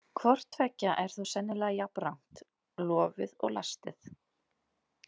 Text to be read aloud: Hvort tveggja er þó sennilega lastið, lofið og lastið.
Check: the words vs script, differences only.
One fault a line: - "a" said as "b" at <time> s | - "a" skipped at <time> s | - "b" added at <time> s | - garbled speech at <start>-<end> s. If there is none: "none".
- "lastið" said as "jafnrangt" at 1.8 s